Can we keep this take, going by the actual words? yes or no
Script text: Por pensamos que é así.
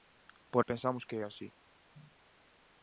yes